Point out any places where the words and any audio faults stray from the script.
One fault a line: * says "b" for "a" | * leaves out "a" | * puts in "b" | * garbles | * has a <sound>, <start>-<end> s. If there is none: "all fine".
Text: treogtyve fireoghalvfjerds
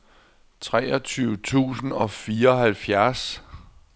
* puts in "tusind og"